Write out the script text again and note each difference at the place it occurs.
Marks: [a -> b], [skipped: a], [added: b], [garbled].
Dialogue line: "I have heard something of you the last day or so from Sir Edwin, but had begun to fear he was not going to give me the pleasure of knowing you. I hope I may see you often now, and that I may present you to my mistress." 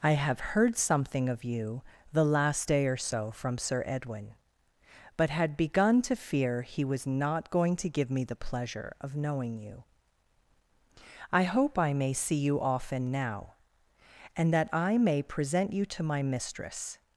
"I have heard something of you the last day or so from Sir Edwin, but had begun to fear he was not going to give me the pleasure of knowing you. I hope I may see you often now, and that I may present you to my mistress."